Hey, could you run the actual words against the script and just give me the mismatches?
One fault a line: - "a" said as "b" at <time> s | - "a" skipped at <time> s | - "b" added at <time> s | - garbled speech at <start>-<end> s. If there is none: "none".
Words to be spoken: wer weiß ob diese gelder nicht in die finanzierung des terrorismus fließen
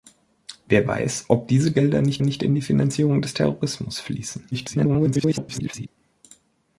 - "nicht" added at 2.2 s
- garbled speech at 4.5-5.9 s